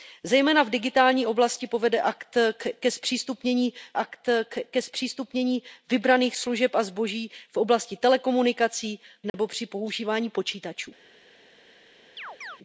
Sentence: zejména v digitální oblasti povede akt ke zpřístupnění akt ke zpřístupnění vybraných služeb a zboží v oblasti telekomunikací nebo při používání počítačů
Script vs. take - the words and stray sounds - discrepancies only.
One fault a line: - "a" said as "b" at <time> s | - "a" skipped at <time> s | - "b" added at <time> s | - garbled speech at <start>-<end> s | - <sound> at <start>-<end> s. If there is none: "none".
- dropout at 9.3-9.3 s
- chirp at 12.2-12.6 s